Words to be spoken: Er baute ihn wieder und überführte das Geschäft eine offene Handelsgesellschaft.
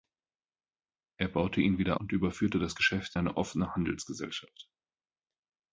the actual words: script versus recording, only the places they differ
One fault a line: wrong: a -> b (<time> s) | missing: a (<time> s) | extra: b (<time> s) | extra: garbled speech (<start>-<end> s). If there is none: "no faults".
no faults